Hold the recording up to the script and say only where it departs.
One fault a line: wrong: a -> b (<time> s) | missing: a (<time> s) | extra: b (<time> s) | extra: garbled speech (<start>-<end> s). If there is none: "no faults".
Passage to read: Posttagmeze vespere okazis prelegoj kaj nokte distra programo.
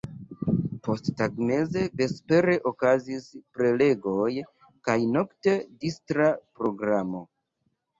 no faults